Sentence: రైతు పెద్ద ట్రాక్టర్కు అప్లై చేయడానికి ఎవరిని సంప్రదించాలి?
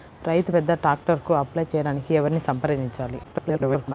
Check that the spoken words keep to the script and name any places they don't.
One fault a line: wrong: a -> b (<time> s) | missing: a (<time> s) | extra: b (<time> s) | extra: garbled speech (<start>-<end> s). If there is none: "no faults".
extra: garbled speech (3.2-3.9 s)